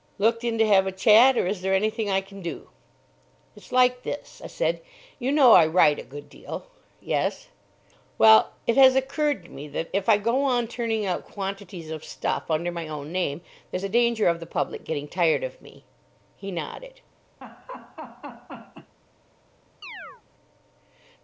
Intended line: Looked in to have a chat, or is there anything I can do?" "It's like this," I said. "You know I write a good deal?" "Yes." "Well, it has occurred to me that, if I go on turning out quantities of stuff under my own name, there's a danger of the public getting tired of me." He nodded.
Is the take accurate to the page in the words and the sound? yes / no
no